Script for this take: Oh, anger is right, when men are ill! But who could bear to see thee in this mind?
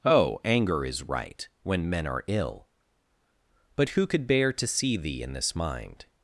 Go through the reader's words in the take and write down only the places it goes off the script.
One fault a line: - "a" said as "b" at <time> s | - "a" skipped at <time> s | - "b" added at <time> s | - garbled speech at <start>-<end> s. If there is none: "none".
none